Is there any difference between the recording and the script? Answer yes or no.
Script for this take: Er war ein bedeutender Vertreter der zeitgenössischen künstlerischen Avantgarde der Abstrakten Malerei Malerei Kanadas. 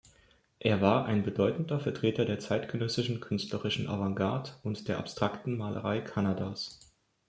yes